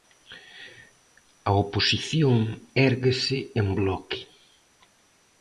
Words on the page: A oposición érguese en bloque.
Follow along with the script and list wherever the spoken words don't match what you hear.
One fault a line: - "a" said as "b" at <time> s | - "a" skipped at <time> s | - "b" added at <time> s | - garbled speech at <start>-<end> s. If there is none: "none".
none